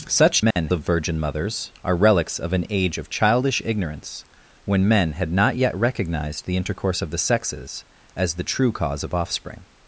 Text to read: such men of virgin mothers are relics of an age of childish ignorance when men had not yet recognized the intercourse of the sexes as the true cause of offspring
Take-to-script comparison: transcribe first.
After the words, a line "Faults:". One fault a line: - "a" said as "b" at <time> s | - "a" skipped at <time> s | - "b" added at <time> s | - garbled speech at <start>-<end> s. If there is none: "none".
such men of virgin mothers are relics of an age of childish ignorance when men had not yet recognized the intercourse of the sexes as the true cause of offspring
Faults:
none